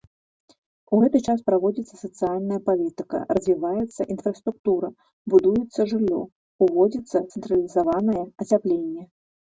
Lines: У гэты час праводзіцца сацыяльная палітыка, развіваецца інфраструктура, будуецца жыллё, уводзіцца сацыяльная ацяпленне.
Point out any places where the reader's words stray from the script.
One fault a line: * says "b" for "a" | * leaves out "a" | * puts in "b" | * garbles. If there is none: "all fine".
* says "цэнтралізаванае" for "сацыяльная"